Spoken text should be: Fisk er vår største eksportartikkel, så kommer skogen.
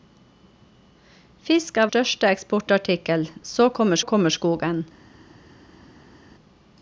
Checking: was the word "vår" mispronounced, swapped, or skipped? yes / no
yes